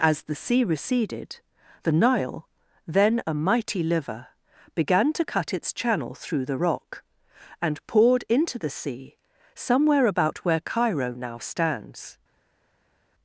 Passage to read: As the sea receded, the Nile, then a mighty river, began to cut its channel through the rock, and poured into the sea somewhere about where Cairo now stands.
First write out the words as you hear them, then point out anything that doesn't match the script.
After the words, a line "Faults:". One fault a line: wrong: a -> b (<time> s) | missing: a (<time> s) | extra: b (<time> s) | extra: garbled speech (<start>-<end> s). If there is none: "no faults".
As the sea receded, the Nile, then a mighty liver, began to cut its channel through the rock, and poured into the sea somewhere about where Cairo now stands.
Faults:
wrong: river -> liver (3.8 s)